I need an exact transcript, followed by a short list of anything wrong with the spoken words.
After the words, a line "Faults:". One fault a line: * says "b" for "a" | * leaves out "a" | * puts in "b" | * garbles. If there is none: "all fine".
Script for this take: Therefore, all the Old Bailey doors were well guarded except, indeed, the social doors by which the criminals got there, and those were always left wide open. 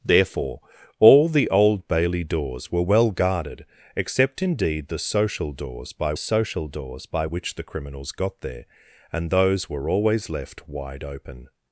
Therefore, all the Old Bailey doors were well guarded except, indeed, the social doors by social doors by which the criminals got there, and those were always left wide open.
Faults:
* puts in "social doors by"